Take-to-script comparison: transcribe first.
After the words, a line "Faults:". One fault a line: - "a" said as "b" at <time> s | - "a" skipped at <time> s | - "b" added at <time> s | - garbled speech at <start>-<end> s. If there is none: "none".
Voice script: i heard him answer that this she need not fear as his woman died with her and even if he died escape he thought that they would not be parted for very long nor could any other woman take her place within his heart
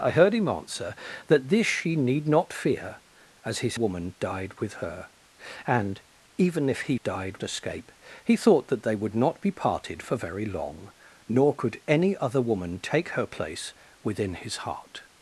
i heard him answer that this she need not fear as his woman died with her and even if he died escape he thought that they would not be parted for very long nor could any other woman take her place within his heart
Faults:
none